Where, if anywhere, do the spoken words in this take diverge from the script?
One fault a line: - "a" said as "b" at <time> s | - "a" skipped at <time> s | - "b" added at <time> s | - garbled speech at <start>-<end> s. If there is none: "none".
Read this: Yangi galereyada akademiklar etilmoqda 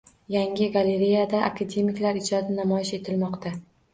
- "ijodi namoyish" added at 2.2 s